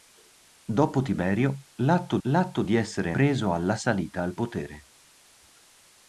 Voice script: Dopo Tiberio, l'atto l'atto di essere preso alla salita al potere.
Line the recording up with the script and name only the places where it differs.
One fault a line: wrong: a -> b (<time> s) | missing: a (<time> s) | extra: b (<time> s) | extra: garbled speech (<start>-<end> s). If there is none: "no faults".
no faults